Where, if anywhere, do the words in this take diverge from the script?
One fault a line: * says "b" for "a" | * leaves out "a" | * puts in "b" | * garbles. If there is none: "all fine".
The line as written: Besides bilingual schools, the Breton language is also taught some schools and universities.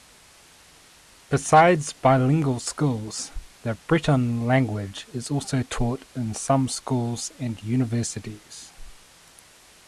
* puts in "in"